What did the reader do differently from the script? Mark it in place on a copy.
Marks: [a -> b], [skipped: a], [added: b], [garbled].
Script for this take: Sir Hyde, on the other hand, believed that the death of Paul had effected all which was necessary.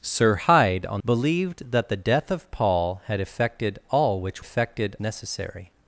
Sir Hyde, on [skipped: the other hand,] believed that the death of Paul had effected all which [was -> effected] necessary.